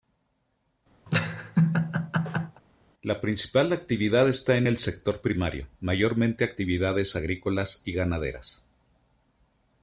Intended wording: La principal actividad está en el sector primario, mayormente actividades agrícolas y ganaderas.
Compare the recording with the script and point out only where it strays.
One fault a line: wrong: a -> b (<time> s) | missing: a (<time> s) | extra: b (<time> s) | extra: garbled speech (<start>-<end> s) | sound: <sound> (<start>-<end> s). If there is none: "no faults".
sound: laugh (1.1-2.6 s)